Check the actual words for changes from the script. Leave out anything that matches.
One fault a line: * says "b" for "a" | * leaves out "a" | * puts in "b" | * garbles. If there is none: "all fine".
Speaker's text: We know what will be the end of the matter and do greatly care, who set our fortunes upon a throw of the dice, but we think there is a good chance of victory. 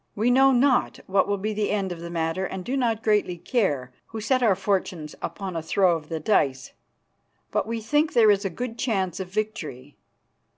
* puts in "not"
* puts in "not"